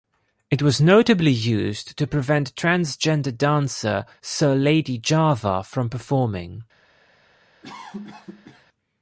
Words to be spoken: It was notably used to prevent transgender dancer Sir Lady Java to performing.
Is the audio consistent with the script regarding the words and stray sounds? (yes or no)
no